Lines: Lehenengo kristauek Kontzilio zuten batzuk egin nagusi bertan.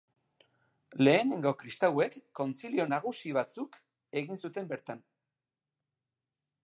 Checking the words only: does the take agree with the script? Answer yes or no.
no